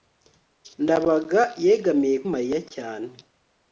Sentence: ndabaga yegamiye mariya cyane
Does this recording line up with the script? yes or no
yes